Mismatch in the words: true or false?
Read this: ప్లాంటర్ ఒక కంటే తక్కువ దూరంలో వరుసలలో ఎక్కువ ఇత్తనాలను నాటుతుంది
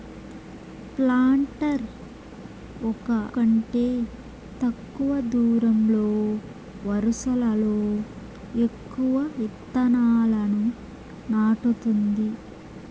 false